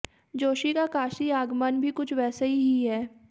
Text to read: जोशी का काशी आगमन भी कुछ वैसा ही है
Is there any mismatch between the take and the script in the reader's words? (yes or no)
no